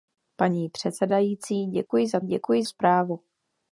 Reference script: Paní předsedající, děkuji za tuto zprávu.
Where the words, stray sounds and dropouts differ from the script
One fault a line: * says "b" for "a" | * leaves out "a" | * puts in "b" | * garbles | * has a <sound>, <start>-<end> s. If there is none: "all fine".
* has a dropout, 1.9-1.9 s
* says "děkuji" for "tuto"